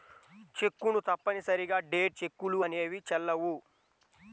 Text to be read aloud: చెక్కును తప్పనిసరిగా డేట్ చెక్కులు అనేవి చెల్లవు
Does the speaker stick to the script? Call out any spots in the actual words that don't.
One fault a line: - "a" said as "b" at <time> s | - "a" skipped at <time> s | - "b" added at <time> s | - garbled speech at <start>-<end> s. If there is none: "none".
none